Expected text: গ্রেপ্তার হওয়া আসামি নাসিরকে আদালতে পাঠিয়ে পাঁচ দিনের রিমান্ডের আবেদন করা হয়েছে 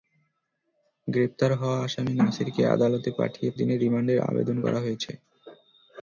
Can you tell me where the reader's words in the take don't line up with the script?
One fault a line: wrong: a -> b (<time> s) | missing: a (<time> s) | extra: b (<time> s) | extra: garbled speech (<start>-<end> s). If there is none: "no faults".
missing: পাঁচ (3.5 s)